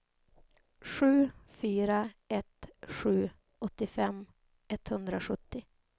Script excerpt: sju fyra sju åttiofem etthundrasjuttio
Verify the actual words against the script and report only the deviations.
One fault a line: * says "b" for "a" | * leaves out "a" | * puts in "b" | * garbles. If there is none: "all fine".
* puts in "ett"